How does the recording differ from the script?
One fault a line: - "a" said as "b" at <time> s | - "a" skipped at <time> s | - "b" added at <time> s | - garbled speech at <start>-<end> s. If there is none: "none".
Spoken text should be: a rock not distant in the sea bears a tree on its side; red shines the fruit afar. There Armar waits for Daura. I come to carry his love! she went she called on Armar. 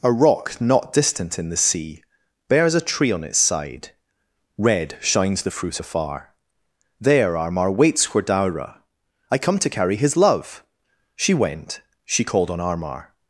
none